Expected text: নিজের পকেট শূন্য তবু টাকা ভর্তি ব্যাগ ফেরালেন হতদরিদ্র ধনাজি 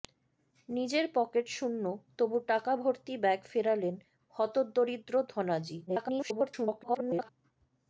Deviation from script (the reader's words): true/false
true